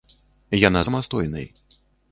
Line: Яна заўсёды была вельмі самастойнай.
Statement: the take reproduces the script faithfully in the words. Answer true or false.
false